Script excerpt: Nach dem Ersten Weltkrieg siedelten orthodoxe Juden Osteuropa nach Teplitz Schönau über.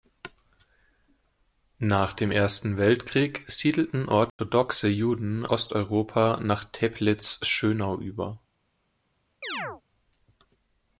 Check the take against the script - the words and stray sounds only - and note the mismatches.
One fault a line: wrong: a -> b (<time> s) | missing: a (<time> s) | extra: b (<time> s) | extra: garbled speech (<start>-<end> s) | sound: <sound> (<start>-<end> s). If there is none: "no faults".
sound: dropout (4.3-4.4 s)
sound: chirp (9.4-9.8 s)